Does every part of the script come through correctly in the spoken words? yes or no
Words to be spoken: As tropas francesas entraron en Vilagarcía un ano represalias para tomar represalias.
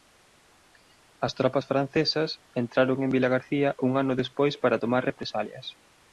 no